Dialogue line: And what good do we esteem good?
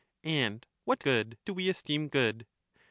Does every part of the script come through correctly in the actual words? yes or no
yes